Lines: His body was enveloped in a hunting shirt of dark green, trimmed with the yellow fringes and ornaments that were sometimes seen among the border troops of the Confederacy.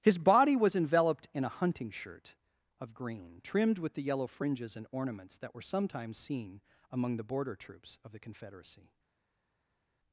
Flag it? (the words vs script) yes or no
yes